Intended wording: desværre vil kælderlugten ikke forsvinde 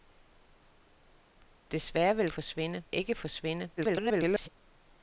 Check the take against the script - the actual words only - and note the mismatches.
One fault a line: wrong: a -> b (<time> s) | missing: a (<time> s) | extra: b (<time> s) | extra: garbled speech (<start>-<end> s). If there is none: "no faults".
wrong: kælderlugten -> forsvinde (2.3 s)
extra: garbled speech (3.8-4.5 s)